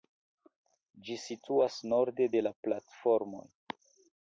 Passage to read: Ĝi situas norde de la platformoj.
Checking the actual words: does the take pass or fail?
pass